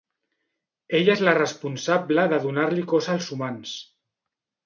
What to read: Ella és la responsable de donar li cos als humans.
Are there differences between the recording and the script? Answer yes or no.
no